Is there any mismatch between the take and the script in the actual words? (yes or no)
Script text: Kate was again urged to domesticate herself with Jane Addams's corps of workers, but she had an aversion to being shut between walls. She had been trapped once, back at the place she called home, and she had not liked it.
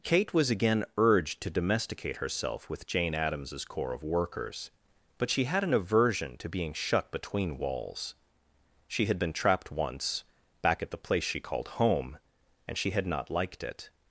no